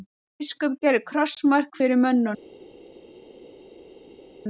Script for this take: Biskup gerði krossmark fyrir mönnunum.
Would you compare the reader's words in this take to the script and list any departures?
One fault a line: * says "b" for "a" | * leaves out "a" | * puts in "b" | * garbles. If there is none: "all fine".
all fine